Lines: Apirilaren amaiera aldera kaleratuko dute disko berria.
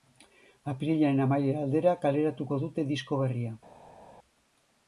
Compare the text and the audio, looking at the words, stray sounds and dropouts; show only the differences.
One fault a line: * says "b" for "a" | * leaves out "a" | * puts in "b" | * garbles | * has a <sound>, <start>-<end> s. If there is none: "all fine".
all fine